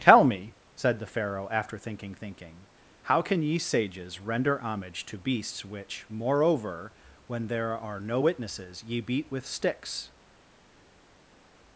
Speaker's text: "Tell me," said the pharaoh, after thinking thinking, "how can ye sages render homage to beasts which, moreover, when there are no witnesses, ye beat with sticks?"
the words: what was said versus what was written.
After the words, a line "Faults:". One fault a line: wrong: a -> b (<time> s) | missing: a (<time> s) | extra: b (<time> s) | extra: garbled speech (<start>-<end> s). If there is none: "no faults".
"Tell me," said the pharaoh, after thinking thinking, "how can ye sages render homage to beasts which, moreover, when there are no witnesses, ye beat with sticks?"
Faults:
no faults